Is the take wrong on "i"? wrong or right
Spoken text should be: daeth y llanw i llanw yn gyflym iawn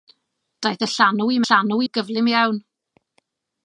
right